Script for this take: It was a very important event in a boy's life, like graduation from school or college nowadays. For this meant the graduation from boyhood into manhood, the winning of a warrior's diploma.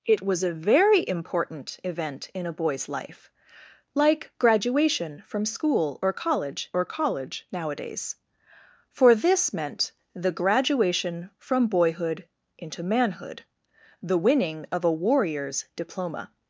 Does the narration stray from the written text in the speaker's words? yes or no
yes